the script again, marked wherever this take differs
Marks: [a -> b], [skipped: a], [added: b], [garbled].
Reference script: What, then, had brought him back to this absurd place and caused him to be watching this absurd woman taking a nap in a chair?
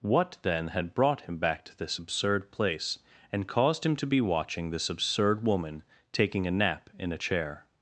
What, then, had brought him back to this absurd place and caused him to be watching this absurd woman taking a nap in a chair?